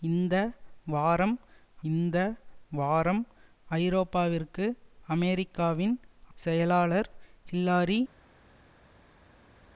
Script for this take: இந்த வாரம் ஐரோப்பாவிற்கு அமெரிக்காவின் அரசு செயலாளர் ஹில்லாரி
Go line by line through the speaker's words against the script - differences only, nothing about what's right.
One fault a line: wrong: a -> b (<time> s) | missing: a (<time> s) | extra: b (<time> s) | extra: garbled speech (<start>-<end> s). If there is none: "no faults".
extra: இந்த வாரம் (1.9 s)
missing: அரசு (5.9 s)